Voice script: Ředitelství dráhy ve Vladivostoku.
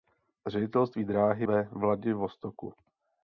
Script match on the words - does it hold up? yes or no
yes